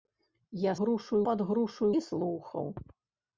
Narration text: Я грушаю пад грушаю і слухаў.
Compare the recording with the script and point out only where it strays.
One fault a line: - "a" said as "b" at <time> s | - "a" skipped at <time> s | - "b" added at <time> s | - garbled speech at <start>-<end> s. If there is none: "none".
none